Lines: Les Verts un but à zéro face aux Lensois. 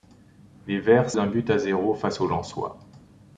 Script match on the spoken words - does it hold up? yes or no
yes